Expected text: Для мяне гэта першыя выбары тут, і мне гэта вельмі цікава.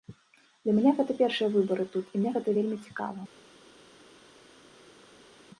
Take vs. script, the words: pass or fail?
pass